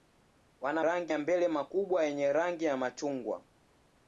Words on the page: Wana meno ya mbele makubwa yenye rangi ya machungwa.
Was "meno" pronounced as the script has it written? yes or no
no